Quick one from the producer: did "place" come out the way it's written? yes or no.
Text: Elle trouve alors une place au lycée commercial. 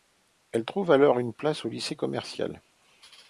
yes